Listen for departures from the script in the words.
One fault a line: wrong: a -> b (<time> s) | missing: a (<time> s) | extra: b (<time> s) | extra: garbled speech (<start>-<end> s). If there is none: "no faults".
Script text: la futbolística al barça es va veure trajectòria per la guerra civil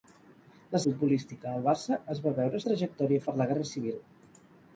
no faults